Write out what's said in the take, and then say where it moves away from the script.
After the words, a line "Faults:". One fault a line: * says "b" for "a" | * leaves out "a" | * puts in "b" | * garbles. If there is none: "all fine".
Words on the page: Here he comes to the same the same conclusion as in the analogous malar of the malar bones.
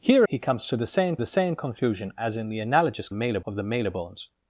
Here he comes to the same the same conclusion as in the analogous malar of the malar bones.
Faults:
all fine